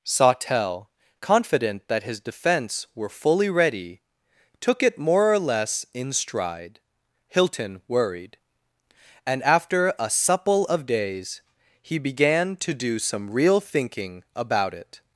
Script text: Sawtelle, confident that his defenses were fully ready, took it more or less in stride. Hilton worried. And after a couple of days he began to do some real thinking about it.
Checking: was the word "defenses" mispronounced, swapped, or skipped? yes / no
yes